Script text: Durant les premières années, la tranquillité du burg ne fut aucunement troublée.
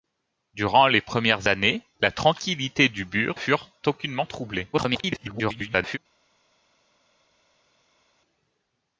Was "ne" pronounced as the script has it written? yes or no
no